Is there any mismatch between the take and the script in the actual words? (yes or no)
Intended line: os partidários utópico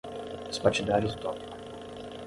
no